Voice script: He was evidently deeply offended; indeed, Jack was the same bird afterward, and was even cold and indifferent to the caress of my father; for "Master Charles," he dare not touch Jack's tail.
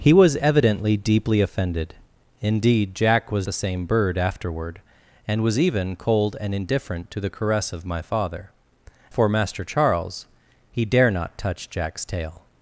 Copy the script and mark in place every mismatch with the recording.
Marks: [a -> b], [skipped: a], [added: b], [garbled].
He was evidently deeply offended; indeed, Jack was the same bird afterward, and was even cold and indifferent to the caress of my father; for "Master Charles," he dare not touch Jack's tail.